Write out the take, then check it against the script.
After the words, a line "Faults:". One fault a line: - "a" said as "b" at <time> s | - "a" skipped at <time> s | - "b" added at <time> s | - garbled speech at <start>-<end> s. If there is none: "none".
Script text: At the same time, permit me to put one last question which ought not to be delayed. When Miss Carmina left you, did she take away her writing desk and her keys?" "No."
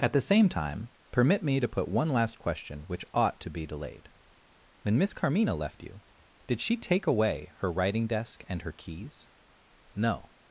At the same time, permit me to put one last question which ought to be delayed. When Miss Carmina left you, did she take away her writing desk and her keys?" "No."
Faults:
- "not" skipped at 3.4 s